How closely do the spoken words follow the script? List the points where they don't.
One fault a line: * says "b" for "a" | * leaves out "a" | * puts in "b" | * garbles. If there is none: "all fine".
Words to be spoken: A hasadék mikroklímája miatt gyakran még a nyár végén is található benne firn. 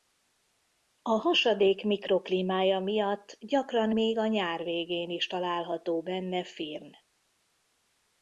all fine